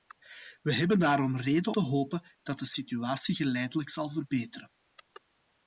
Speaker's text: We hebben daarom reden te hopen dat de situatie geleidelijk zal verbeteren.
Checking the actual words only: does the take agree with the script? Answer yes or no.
yes